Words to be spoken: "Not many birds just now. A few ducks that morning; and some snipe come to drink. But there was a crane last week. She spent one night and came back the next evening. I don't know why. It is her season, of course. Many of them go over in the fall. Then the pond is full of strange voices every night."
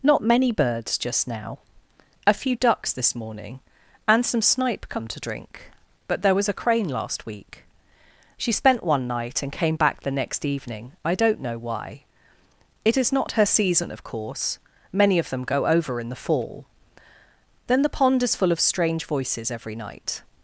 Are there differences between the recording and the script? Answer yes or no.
yes